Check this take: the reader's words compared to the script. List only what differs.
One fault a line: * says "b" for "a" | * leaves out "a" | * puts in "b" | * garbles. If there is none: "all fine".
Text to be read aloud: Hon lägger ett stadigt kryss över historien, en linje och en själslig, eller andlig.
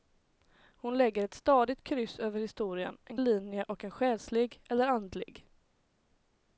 all fine